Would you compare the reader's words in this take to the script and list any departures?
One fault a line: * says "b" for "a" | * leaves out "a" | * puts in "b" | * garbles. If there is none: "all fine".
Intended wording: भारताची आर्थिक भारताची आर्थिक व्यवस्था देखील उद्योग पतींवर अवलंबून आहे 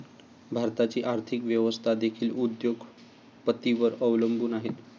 * leaves out "भारताची आर्थिक"